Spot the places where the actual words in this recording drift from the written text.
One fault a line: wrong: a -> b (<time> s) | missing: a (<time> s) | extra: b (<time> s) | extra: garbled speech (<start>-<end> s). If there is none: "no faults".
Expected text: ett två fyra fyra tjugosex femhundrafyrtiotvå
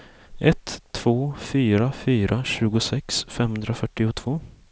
no faults